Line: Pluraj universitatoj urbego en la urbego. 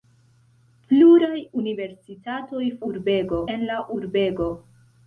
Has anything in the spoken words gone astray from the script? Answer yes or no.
no